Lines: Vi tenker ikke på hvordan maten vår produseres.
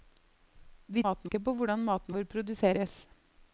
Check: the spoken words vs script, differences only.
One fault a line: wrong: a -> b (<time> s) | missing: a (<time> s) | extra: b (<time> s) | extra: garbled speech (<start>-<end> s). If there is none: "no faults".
wrong: tenker -> maten (1.0 s)